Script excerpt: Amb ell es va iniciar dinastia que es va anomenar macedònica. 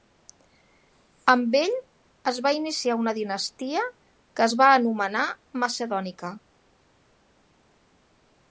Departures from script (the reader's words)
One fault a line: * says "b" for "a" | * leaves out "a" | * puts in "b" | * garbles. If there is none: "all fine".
* puts in "una"